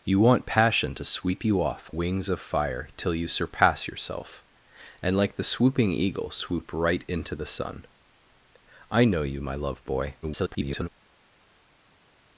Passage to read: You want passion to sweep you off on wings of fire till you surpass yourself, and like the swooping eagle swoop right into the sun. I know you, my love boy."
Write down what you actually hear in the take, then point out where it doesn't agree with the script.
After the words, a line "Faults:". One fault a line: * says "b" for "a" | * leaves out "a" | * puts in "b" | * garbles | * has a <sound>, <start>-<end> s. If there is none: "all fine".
You want passion to sweep you off wings of fire till you surpass yourself, and like the swooping eagle swoop right into the sun. I know you, my love boy." [garbled]
Faults:
* leaves out "on"
* garbles